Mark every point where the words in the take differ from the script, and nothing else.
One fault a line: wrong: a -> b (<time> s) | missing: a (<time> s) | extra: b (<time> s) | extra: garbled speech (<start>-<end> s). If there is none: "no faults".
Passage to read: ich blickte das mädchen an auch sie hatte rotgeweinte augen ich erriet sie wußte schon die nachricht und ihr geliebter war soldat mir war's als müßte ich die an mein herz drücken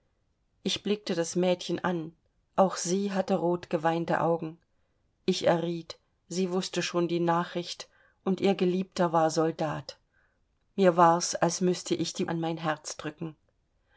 no faults